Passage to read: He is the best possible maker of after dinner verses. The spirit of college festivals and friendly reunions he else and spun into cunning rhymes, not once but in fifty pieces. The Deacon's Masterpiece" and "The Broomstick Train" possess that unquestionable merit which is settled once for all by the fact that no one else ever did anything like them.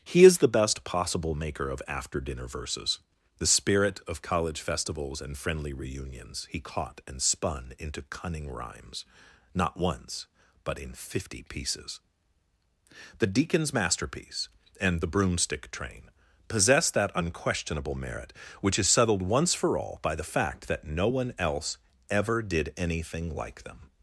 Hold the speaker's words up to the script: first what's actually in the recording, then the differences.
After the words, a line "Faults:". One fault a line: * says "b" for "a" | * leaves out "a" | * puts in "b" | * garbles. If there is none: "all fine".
He is the best possible maker of after dinner verses. The spirit of college festivals and friendly reunions he caught and spun into cunning rhymes, not once but in fifty pieces. The Deacon's Masterpiece" and "The Broomstick Train" possess that unquestionable merit which is settled once for all by the fact that no one else ever did anything like them.
Faults:
* says "caught" for "else"